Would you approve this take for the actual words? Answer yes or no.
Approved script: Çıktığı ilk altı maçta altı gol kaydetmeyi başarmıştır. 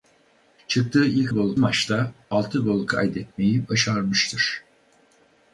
no